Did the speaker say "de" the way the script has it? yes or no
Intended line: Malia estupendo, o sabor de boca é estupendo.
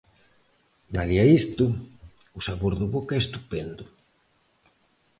yes